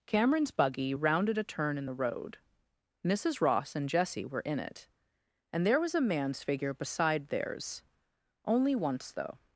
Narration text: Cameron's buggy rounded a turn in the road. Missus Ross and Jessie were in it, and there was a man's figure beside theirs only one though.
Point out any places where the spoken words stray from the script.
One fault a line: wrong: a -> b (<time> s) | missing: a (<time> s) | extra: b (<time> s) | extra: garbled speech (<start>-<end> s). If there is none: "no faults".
wrong: one -> once (8.8 s)